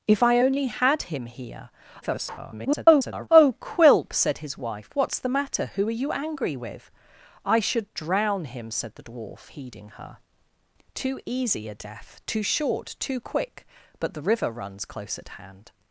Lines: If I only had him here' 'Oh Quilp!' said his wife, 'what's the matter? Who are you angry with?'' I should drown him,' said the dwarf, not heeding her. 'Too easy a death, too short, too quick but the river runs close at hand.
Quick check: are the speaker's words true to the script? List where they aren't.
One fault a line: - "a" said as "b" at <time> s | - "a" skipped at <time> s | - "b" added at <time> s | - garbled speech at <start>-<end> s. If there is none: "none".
- garbled speech at 2.0-3.3 s
- "not" skipped at 9.5 s